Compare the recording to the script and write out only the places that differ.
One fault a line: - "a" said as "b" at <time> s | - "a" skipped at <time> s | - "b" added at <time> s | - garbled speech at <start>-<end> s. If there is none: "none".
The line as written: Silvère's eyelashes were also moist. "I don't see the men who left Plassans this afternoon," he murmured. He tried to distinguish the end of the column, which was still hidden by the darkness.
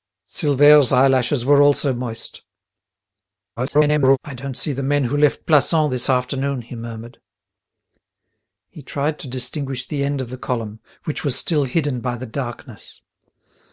- garbled speech at 3.6-4.2 s